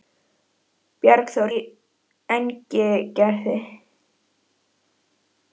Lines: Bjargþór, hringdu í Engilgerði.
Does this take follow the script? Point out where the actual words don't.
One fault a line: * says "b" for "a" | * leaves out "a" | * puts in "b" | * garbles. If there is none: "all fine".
* leaves out "hringdu"